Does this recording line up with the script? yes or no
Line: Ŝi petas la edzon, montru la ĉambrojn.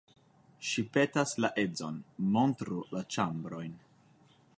yes